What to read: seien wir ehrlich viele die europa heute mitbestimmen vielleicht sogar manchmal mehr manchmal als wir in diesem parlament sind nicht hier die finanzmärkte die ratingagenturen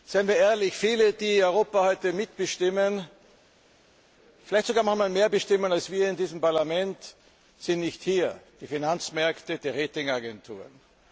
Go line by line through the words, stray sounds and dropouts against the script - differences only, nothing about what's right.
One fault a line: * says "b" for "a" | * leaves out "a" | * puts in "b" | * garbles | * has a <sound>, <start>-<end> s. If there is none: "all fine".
* says "bestimmen" for "manchmal"